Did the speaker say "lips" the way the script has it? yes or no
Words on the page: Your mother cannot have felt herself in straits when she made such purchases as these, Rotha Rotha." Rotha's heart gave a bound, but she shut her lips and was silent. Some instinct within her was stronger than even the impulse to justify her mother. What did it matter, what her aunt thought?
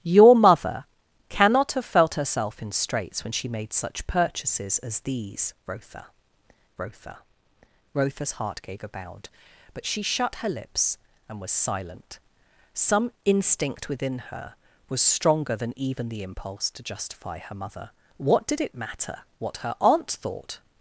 yes